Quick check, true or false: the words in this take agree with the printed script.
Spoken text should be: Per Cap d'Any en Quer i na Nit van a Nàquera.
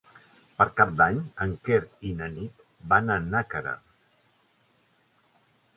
true